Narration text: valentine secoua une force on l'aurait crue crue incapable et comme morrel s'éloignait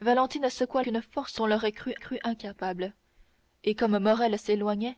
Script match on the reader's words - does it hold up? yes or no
yes